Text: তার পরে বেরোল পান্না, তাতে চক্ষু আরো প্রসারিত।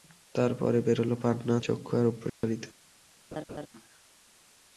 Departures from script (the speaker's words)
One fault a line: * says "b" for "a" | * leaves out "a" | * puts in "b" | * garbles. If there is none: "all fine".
* leaves out "তাতে"